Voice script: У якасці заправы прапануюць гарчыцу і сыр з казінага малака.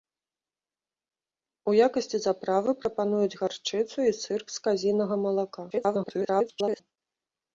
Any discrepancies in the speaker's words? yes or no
yes